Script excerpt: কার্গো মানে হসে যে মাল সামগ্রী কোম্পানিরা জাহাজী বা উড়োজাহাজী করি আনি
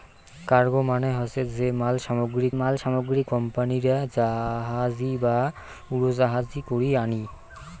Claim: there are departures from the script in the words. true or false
true